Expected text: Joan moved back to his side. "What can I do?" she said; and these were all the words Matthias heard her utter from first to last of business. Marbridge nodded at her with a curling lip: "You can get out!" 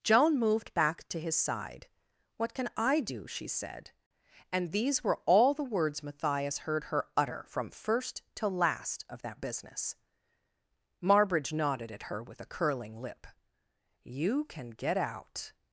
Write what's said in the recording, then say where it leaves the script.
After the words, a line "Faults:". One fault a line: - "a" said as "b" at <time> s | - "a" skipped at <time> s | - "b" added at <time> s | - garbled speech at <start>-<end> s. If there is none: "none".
Joan moved back to his side. "What can I do?" she said; and these were all the words Matthias heard her utter from first to last of that business. Marbridge nodded at her with a curling lip: "You can get out!"
Faults:
- "that" added at 9.2 s